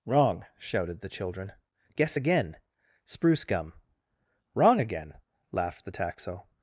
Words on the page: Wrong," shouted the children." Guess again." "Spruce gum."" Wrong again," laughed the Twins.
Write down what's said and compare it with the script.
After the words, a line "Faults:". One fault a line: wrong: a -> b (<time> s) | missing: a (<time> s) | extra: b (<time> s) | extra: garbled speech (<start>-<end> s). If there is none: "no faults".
Wrong," shouted the children." Guess again." "Spruce gum."" Wrong again," laughed the Taxo.
Faults:
wrong: Twins -> Taxo (5.9 s)